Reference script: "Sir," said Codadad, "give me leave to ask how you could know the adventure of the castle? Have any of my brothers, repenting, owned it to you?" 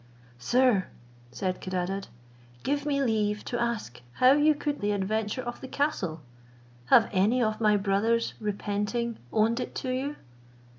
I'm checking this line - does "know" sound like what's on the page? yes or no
no